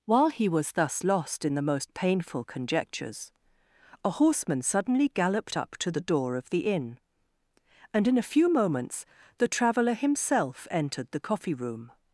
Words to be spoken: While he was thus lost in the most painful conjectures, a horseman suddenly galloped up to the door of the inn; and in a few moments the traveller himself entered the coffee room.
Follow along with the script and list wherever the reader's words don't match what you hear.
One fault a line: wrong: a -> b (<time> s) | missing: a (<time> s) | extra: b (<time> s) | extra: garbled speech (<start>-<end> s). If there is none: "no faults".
no faults